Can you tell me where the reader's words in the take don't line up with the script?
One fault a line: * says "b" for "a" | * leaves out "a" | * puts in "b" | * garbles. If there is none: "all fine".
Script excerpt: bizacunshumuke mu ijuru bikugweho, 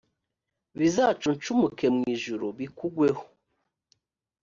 all fine